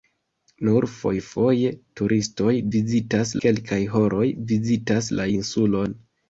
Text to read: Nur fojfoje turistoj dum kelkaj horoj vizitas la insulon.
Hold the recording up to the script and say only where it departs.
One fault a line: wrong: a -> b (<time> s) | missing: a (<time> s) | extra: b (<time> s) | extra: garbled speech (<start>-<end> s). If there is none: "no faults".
wrong: dum -> vizitas (2.8 s)